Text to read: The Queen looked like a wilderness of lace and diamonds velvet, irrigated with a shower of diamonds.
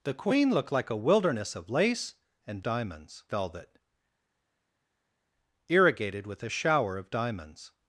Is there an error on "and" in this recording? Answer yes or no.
no